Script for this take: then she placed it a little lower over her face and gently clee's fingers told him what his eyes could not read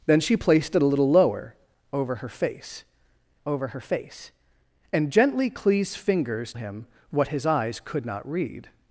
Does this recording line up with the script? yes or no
no